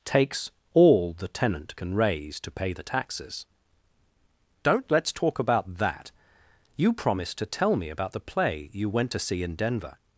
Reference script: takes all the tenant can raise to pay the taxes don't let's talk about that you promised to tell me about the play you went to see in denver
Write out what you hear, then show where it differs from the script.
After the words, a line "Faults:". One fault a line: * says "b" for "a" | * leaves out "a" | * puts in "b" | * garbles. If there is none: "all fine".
takes all the tenant can raise to pay the taxes don't let's talk about that you promised to tell me about the play you went to see in denver
Faults:
all fine